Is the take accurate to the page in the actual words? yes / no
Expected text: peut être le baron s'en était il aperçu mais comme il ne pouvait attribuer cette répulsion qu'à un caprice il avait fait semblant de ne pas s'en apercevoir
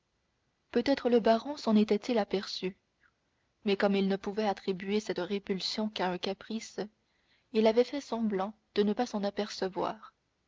yes